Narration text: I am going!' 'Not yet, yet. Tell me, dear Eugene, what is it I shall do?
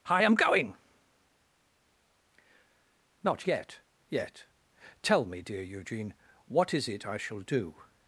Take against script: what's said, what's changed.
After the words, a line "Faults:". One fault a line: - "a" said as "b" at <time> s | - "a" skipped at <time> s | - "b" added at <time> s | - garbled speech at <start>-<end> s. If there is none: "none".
I am going!' 'Not yet, yet. Tell me, dear Eugene, what is it I shall do?
Faults:
none